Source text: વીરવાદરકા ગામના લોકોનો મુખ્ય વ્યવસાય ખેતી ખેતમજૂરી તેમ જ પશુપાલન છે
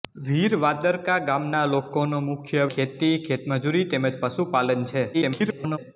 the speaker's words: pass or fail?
fail